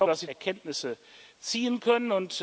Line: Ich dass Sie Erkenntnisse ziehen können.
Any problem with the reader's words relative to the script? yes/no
no